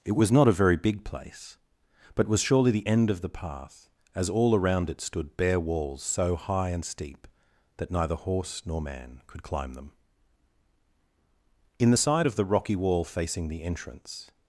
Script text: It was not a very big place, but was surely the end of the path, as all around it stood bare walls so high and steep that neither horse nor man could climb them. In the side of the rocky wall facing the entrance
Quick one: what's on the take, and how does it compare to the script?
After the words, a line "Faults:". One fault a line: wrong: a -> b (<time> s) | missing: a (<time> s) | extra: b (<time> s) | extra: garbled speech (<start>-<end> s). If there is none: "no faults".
It was not a very big place, but was surely the end of the path, as all around it stood bare walls so high and steep that neither horse nor man could climb them. In the side of the rocky wall facing the entrance
Faults:
no faults